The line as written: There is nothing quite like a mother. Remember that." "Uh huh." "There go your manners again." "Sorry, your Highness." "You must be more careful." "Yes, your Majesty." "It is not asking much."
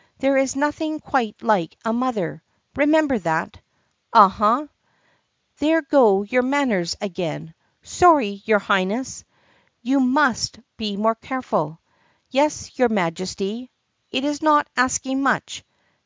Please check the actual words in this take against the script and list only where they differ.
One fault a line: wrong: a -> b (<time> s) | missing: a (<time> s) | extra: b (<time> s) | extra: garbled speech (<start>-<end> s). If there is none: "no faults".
no faults